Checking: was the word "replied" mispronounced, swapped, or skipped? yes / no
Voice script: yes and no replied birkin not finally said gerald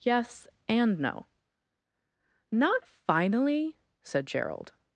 yes